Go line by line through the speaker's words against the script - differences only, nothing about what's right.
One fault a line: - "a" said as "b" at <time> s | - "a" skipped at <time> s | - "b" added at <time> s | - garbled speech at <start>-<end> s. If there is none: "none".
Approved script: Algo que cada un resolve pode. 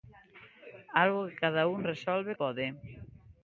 none